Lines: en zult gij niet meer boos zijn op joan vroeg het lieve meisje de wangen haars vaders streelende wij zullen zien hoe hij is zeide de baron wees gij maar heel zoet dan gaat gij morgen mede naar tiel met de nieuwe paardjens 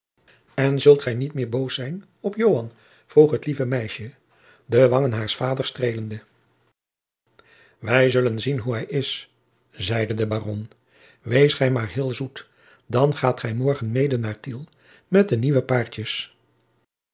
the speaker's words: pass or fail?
pass